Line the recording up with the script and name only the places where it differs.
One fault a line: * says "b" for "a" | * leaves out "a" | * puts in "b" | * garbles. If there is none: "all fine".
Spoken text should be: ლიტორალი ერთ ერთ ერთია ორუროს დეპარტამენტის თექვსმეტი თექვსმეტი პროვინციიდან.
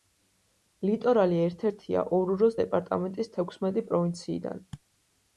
* leaves out "ერთ"
* leaves out "თექვსმეტი"